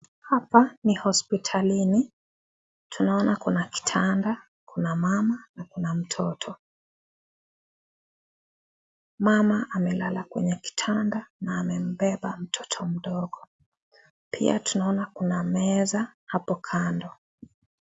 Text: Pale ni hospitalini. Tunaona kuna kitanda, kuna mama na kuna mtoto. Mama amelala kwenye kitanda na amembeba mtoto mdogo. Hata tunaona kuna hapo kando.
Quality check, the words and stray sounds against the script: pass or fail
fail